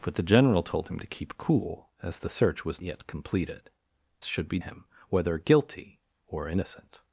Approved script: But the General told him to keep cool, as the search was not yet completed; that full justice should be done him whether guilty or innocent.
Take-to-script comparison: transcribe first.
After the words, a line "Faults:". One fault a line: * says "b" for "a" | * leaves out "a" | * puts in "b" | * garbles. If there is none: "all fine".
But the General told him to keep cool, as the search was yet completed; should be him whether guilty or innocent.
Faults:
* leaves out "not"
* leaves out "that full justice"
* leaves out "done"